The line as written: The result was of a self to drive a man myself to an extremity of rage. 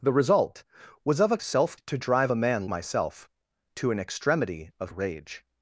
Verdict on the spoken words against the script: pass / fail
pass